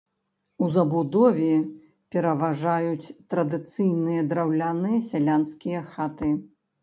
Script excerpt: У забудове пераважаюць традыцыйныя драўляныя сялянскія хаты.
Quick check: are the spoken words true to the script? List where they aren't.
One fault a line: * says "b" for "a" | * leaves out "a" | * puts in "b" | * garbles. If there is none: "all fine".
all fine